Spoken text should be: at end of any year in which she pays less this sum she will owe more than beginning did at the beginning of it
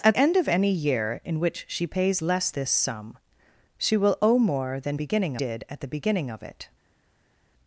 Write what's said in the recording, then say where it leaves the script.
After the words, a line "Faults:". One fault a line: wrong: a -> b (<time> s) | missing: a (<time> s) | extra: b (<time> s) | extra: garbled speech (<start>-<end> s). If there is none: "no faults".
at end of any year in which she pays less this sum she will owe more than beginning did at the beginning of it
Faults:
no faults